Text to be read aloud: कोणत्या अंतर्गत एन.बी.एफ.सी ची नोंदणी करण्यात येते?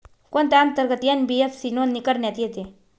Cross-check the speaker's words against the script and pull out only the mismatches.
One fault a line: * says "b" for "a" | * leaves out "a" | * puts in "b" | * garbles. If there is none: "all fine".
* leaves out "ची"